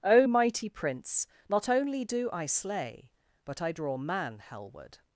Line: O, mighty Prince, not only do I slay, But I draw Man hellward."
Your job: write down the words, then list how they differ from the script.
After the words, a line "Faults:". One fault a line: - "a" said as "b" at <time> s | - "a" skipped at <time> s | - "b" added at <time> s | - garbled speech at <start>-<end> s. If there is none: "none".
O, mighty Prince, not only do I slay, But I draw Man hellward."
Faults:
none